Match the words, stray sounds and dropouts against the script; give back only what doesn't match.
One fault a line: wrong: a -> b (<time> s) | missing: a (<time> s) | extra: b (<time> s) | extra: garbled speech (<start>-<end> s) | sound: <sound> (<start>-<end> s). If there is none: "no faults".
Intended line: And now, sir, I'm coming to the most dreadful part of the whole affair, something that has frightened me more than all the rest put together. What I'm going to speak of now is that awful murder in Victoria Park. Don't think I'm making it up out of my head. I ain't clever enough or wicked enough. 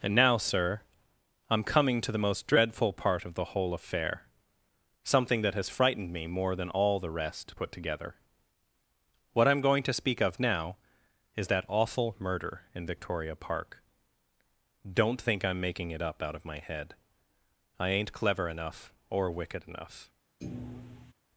sound: thud (20.4-21.1 s)